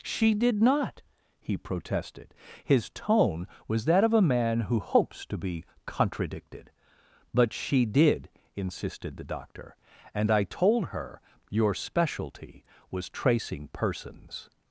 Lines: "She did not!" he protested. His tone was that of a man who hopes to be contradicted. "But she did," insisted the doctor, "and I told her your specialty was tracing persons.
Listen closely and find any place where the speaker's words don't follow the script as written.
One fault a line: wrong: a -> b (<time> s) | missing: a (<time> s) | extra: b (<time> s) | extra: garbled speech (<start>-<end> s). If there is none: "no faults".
no faults